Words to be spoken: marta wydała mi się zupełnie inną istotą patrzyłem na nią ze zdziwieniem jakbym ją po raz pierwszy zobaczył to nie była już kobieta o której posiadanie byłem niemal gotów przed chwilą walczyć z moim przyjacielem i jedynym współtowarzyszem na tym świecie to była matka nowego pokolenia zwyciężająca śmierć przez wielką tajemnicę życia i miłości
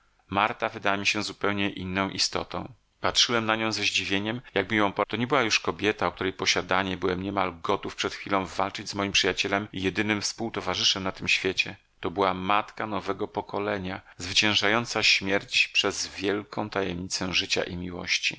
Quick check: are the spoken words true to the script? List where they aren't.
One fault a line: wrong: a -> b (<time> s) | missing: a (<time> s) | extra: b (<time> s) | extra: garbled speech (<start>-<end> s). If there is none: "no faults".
missing: raz pierwszy zobaczył (5.0 s)